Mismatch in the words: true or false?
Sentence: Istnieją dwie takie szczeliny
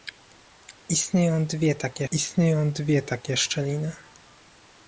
true